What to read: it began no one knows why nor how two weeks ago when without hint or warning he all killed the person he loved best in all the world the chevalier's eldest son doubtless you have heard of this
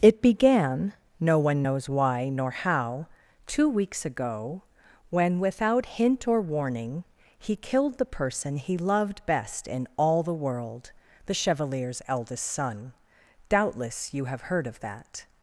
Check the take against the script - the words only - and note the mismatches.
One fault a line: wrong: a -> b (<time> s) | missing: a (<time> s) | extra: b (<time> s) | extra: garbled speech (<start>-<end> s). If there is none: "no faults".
missing: all (7.6 s)
wrong: this -> that (14.8 s)